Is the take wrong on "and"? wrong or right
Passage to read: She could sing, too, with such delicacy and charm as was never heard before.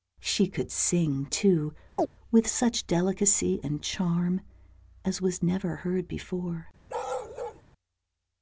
right